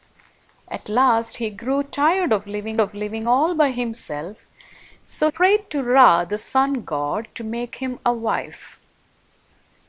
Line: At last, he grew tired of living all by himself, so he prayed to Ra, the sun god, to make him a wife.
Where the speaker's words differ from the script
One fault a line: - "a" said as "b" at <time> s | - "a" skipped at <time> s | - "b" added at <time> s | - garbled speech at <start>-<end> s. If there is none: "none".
- "of living" added at 2.8 s
- "he" skipped at 5.3 s